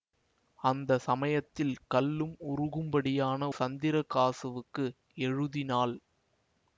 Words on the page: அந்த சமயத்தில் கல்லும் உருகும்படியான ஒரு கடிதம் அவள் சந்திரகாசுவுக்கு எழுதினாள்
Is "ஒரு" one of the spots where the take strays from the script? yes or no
yes